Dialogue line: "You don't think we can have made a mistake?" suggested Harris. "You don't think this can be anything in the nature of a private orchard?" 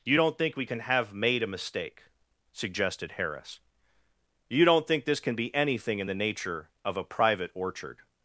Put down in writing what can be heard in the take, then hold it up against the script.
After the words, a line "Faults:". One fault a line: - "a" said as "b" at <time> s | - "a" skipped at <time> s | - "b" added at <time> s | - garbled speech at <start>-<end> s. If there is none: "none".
"You don't think we can have made a mistake?" suggested Harris. "You don't think this can be anything in the nature of a private orchard?"
Faults:
none